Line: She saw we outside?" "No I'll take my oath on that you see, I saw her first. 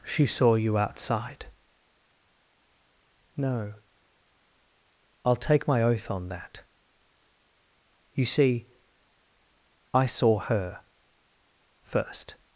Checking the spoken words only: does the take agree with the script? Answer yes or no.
no